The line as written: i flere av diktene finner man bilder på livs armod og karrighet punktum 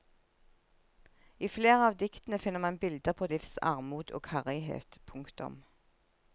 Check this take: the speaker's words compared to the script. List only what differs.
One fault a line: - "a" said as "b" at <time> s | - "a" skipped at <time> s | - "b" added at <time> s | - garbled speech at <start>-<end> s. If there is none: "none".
none